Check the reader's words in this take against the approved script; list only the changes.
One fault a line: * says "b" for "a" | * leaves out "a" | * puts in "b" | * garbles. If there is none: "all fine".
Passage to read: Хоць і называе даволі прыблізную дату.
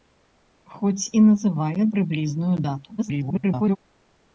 * leaves out "даволі"
* garbles